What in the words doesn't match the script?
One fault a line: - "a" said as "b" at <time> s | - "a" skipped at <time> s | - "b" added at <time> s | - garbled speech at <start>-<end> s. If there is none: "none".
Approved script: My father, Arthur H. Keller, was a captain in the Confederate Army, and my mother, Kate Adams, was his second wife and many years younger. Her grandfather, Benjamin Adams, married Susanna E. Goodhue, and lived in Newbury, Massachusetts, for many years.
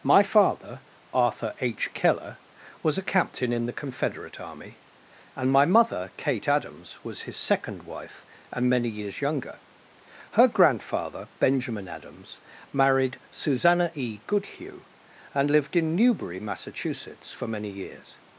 none